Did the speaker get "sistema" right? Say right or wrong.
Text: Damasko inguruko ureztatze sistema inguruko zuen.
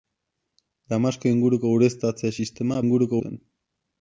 right